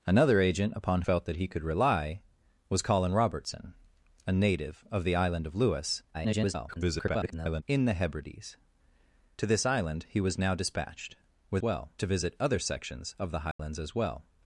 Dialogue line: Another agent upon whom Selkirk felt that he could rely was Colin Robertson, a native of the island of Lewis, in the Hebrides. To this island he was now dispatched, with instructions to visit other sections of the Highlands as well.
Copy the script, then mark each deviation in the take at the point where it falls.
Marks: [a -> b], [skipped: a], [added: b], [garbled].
Another agent upon [skipped: whom Selkirk] felt that he could rely was Colin Robertson, a native of the island of Lewis, [garbled] in the Hebrides. To this island he was now dispatched, with [instructions -> well] to visit other sections of the Highlands as well.